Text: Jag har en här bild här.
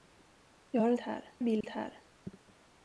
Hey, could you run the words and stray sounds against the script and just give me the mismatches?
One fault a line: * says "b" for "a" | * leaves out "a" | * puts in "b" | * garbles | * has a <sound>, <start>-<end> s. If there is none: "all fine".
* has a dropout, 1.6-1.6 s